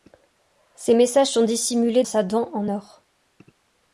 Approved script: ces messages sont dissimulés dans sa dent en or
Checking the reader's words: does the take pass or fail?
fail